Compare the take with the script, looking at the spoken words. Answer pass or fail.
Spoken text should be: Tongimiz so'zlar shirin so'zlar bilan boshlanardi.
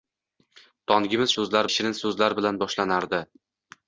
pass